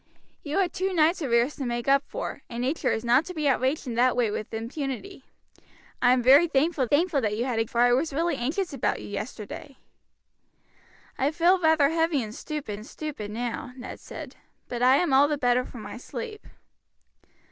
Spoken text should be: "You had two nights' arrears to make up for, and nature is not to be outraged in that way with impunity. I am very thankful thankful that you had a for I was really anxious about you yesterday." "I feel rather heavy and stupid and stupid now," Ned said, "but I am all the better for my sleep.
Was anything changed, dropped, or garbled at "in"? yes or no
no